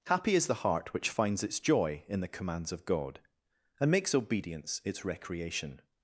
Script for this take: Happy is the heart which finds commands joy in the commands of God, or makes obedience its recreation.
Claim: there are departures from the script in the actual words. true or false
true